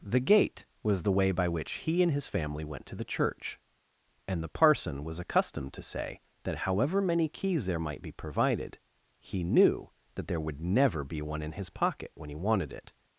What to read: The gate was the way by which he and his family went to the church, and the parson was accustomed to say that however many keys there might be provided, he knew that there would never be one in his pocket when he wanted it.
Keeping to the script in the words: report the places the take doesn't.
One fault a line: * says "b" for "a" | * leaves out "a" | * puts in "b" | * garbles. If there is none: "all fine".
all fine